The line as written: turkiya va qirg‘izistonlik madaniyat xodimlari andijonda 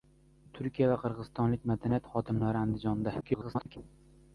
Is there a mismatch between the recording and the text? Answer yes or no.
yes